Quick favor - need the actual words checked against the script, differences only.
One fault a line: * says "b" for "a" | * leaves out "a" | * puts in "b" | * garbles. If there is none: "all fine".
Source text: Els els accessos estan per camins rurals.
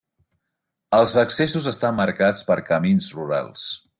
* leaves out "els"
* puts in "marcats"